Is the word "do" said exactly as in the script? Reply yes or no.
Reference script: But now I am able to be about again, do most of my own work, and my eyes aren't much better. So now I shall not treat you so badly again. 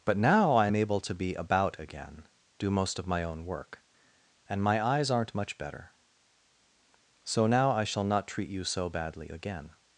yes